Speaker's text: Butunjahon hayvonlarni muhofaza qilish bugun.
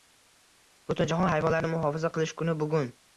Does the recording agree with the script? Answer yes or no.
no